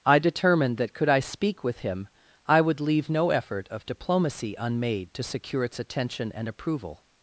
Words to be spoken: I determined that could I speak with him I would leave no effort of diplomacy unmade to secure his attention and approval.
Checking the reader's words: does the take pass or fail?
fail